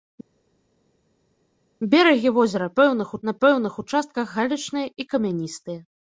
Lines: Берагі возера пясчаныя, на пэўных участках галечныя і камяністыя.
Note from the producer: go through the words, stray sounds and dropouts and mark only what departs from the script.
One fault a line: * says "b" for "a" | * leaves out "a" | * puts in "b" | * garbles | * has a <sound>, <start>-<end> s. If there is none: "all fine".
* says "пэўных" for "пясчаныя"